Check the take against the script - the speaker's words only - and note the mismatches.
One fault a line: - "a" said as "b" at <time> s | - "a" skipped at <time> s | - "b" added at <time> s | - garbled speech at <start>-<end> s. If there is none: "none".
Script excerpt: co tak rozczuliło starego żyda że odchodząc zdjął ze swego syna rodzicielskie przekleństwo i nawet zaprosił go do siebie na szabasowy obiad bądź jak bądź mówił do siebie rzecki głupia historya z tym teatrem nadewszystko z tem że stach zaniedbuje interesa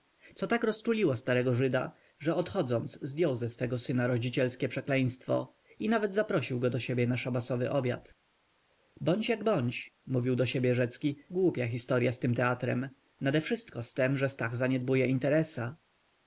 none